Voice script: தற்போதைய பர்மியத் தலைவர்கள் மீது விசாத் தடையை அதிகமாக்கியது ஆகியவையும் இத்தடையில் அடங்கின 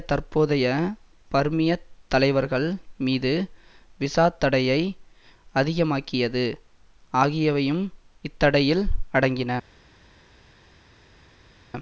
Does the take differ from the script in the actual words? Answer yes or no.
no